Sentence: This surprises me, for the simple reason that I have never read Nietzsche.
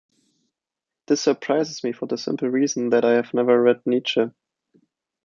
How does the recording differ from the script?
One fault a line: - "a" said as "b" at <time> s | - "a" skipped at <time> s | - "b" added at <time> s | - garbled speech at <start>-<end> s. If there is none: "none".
none